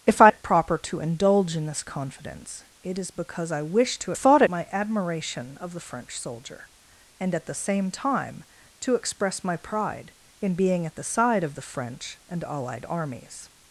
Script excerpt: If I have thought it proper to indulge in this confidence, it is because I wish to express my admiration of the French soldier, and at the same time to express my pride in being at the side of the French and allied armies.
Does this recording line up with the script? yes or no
no